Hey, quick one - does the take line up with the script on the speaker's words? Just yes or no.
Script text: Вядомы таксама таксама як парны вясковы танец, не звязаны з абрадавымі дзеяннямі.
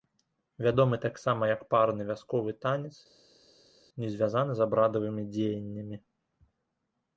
no